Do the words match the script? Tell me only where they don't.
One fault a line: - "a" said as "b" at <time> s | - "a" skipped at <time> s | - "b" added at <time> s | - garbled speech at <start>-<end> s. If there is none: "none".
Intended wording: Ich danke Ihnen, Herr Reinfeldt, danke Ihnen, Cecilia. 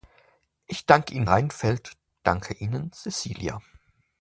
- "Herr" skipped at 1.3 s